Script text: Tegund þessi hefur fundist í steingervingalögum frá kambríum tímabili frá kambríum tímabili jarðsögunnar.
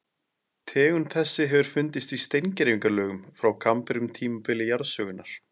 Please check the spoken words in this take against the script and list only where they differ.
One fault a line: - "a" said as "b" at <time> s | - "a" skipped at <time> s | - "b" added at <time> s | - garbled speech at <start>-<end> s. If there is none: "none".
- "frá kambríum tímabili" skipped at 4.7 s